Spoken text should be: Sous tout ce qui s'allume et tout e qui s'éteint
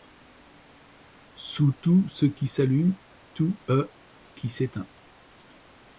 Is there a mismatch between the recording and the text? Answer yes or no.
yes